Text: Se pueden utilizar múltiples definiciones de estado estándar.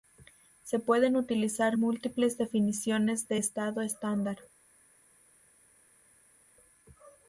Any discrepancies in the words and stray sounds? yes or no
no